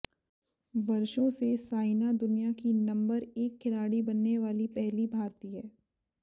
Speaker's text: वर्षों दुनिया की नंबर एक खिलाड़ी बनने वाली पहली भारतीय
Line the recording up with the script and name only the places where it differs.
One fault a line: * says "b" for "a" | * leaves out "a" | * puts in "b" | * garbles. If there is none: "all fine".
* puts in "से साइना"